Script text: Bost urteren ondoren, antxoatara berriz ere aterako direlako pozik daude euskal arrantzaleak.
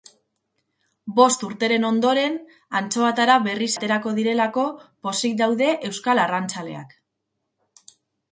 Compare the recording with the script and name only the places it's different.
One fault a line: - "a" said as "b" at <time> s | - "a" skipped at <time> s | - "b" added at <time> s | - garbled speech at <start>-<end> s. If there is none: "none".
- "ere" skipped at 3.7 s